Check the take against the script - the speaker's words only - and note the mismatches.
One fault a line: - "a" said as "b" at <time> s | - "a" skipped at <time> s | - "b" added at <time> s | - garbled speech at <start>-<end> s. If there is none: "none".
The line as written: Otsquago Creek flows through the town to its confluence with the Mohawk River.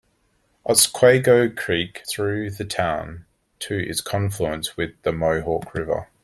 - "flows" skipped at 2.0 s